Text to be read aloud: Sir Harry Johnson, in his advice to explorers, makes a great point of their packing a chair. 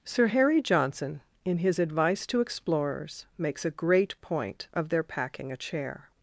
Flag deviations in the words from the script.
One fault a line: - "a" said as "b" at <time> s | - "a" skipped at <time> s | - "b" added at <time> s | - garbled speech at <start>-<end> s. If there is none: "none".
none